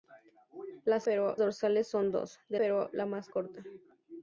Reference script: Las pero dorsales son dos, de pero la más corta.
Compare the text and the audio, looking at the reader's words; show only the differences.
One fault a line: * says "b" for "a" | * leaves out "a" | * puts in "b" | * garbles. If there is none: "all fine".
all fine